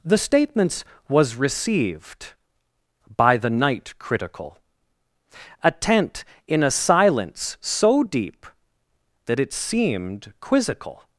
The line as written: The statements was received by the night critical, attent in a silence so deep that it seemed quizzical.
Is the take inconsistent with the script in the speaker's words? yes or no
no